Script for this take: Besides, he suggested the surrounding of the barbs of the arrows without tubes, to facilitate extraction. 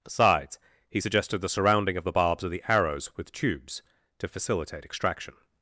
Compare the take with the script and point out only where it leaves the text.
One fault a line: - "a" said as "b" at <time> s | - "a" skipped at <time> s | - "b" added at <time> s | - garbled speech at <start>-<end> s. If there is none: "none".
- "without" said as "with" at 3.2 s